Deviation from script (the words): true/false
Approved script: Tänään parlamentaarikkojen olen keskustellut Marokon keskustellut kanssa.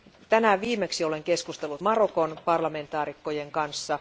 true